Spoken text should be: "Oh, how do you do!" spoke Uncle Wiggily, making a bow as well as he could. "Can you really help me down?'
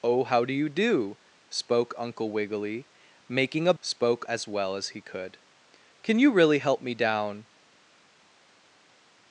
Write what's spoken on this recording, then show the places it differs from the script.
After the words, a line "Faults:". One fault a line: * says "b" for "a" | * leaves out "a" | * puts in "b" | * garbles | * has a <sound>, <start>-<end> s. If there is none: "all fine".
"Oh, how do you do!" spoke Uncle Wiggily, making a spoke as well as he could. "Can you really help me down?'
Faults:
* says "spoke" for "bow"